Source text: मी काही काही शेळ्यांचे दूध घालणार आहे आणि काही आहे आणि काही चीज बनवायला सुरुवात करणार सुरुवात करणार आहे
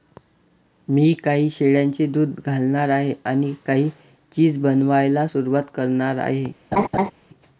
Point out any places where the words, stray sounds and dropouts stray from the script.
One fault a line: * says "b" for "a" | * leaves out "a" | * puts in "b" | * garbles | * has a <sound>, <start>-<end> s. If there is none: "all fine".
* leaves out "काही"
* leaves out "आहे आणि काही"
* leaves out "सुरुवात करणार"
* has a laugh, 6.7-7.1 s